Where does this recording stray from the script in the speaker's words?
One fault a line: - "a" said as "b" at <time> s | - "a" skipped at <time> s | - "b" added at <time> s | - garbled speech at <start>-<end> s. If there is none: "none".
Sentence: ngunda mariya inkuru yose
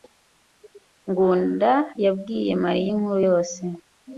- "yabwiye" added at 2.0 s